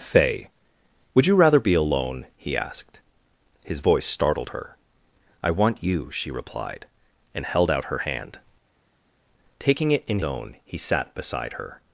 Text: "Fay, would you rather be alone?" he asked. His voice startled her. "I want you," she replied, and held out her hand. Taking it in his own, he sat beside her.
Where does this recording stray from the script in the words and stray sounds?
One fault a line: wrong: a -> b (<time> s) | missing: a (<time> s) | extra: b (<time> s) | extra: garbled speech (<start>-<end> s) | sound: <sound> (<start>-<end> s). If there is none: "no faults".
missing: his (10.2 s)